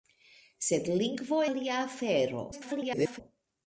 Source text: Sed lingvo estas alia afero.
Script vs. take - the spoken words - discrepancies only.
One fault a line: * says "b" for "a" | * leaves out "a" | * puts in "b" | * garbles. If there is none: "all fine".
* leaves out "estas"
* garbles